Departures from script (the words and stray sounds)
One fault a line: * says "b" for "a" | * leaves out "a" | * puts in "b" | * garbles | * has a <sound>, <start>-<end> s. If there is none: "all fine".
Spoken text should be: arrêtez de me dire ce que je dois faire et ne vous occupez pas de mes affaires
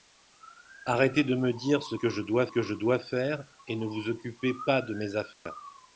* puts in "que je dois"
* has a dropout, 5.3-5.5 s